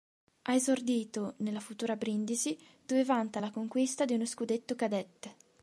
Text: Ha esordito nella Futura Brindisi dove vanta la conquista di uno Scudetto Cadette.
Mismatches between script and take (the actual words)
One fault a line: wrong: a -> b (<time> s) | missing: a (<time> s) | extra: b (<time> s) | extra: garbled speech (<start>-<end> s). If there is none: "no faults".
no faults